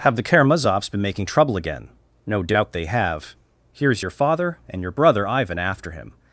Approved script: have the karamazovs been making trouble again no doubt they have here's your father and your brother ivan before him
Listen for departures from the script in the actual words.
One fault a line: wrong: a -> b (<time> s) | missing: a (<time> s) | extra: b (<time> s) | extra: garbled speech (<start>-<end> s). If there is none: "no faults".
wrong: before -> after (5.6 s)